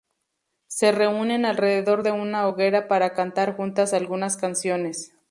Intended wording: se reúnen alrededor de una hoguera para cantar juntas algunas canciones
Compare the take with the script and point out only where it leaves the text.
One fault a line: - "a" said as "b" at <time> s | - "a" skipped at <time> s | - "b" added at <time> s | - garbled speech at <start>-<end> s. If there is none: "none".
none